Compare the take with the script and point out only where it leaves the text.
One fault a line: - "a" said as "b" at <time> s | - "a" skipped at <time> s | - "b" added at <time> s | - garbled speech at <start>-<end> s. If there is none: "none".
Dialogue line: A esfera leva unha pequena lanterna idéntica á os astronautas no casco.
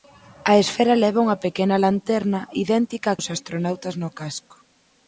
none